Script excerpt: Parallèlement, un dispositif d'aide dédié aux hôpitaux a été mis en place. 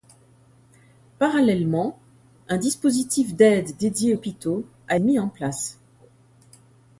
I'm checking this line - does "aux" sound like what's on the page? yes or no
no